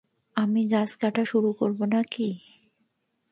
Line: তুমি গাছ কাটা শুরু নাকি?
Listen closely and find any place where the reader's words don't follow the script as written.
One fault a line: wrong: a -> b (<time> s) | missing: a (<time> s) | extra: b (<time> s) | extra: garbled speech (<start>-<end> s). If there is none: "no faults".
wrong: তুমি -> আমি (0.3 s)
extra: করব (1.5 s)